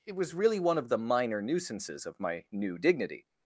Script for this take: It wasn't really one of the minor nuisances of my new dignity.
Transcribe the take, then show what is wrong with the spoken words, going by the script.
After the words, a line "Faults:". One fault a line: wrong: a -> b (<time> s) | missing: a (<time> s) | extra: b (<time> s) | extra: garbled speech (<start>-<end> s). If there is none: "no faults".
It was really one of the minor nuisances of my new dignity.
Faults:
wrong: wasn't -> was (0.1 s)